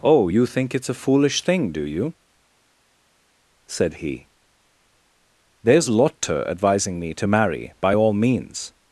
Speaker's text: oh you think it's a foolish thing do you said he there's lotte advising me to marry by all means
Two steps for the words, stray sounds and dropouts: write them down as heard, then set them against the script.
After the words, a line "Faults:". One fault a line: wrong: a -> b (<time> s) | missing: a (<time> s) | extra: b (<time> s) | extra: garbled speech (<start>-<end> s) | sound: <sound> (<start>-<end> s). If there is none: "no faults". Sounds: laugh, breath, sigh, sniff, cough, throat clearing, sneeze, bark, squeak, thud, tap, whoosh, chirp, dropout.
oh you think it's a foolish thing do you said he there's lotte advising me to marry by all means
Faults:
no faults